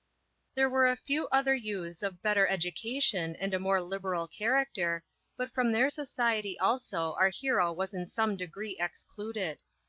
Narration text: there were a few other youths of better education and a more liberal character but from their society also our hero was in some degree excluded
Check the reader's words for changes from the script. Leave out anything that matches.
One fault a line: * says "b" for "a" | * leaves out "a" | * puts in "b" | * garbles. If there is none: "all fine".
all fine